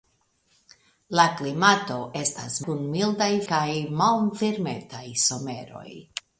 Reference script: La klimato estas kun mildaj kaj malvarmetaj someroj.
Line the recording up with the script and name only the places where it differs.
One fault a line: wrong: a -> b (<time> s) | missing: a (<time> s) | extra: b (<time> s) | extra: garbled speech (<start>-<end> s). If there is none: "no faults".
no faults